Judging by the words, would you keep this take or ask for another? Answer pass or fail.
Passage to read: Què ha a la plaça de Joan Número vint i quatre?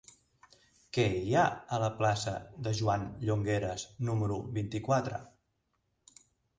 fail